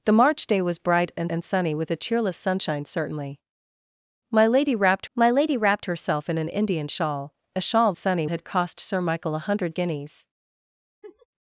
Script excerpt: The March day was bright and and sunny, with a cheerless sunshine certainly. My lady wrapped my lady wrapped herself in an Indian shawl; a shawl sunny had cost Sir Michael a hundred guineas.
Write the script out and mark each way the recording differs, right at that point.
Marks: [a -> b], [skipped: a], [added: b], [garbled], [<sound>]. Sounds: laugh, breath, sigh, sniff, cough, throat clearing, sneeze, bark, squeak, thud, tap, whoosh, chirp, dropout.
The March day was bright and and sunny, with a cheerless sunshine certainly. My lady wrapped my lady wrapped herself in an Indian shawl; a shawl sunny had cost Sir Michael a hundred guineas. [laugh]